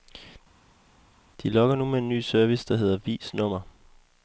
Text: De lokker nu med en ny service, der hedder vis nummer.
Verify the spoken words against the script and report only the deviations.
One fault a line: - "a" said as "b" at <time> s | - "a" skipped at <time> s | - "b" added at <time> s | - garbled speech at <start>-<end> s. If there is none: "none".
none